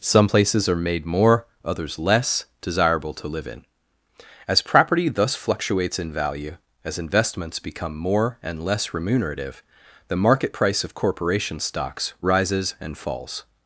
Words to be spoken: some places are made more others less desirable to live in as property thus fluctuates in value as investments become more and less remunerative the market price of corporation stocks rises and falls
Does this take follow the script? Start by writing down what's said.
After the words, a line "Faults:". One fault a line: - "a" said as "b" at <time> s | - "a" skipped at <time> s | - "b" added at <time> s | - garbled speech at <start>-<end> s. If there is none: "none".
some places are made more others less desirable to live in as property thus fluctuates in value as investments become more and less remunerative the market price of corporation stocks rises and falls
Faults:
none